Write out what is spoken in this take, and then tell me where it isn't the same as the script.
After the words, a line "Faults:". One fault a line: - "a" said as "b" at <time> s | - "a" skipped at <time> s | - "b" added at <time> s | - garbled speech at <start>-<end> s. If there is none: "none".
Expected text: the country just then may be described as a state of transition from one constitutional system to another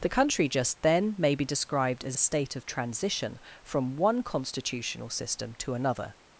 the country just then may be described as a state of transition from one constitutional system to another
Faults:
none